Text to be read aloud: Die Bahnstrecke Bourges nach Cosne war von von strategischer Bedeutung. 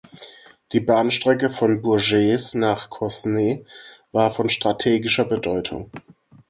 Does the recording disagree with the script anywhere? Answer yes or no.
yes